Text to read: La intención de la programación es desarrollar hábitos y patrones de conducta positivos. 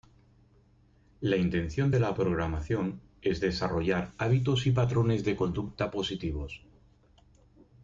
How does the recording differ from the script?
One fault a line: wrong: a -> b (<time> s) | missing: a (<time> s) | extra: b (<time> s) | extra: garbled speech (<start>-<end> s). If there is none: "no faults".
no faults